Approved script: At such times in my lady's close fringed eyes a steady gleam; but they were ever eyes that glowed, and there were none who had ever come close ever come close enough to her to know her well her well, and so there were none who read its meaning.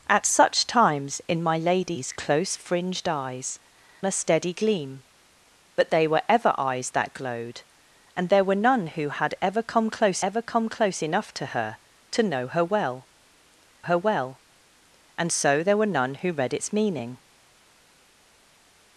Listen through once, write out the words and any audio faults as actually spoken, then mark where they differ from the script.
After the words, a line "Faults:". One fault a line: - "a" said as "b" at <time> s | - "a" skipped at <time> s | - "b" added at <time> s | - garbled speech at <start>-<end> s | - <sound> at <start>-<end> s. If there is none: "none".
At such times in my lady's close fringed eyes a steady gleam; but they were ever eyes that glowed, and there were none who had ever come close ever come close enough to her to know her well her well, and so there were none who read its meaning.
Faults:
none